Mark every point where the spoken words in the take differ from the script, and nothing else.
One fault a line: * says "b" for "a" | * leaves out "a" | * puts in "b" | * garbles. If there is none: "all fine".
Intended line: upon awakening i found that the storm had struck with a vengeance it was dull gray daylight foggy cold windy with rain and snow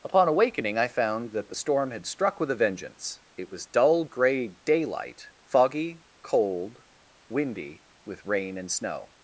all fine